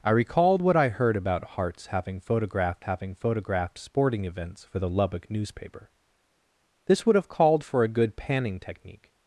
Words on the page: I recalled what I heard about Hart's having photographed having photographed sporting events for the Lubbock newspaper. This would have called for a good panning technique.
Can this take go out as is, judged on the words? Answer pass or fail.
pass